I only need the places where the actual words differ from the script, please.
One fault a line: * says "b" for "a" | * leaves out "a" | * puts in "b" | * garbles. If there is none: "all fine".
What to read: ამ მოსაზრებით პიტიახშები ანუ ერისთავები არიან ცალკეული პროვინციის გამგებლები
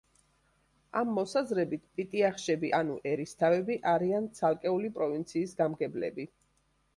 all fine